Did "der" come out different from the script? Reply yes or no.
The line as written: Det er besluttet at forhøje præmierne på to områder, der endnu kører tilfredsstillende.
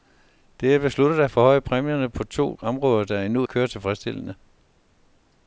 no